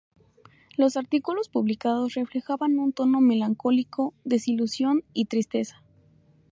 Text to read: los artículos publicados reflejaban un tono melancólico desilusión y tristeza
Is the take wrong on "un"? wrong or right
right